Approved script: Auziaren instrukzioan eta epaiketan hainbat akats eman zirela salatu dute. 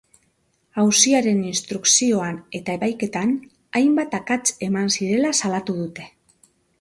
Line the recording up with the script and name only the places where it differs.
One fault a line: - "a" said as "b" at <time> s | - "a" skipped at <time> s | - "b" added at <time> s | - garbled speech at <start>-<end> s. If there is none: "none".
none